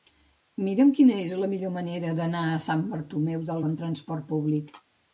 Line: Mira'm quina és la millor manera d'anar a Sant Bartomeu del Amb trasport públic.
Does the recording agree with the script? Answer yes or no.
yes